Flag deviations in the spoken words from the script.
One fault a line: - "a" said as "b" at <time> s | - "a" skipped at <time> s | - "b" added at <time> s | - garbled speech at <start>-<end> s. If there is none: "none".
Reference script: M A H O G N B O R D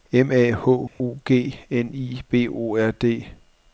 - "I" added at 1.9 s